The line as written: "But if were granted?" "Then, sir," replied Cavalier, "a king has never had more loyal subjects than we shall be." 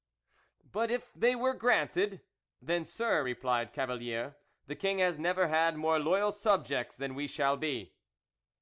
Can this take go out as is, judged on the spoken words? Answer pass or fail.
fail